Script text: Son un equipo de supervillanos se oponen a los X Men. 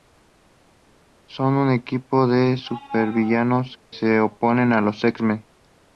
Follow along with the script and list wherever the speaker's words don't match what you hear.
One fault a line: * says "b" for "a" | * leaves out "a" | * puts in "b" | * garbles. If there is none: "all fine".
all fine